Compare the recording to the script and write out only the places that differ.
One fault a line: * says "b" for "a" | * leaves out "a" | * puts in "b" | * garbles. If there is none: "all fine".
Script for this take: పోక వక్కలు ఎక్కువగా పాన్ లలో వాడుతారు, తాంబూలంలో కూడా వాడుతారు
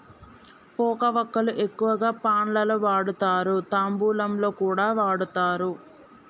all fine